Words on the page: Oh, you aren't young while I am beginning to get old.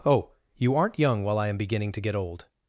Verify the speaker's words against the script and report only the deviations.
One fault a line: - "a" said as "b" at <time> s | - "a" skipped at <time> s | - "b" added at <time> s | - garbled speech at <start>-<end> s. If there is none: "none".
none